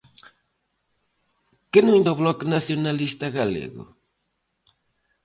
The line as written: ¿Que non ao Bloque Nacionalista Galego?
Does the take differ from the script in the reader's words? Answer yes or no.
no